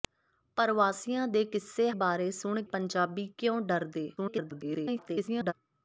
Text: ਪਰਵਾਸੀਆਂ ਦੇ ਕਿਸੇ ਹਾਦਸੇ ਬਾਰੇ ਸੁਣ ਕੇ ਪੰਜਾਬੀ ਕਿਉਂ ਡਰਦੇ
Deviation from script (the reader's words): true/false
true